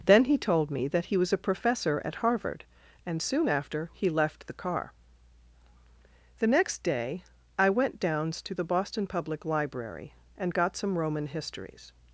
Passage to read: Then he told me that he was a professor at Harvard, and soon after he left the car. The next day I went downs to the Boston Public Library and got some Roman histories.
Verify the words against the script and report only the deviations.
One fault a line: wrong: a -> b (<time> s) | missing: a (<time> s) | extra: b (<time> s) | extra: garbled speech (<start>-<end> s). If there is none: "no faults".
no faults